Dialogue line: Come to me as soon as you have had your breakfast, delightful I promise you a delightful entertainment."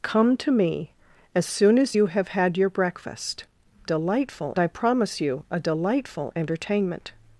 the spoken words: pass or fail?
pass